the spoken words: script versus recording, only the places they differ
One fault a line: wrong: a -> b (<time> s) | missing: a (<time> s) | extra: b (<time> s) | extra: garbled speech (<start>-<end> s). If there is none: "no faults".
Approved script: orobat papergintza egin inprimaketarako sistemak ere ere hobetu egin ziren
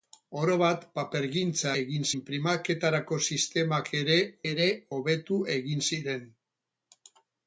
no faults